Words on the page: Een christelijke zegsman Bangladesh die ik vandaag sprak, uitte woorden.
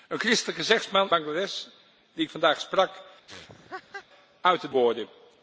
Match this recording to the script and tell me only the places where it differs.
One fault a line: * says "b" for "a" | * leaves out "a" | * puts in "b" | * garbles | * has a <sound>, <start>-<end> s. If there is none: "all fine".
* has a laugh, 3.3-4.1 s